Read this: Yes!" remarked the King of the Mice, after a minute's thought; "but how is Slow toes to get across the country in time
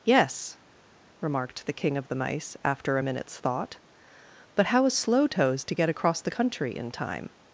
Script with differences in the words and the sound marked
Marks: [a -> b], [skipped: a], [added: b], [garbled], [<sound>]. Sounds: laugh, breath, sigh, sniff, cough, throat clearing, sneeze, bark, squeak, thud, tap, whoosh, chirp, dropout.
Yes!" remarked the King of the Mice, after a minute's thought; "but how is Slow toes to get across the country in time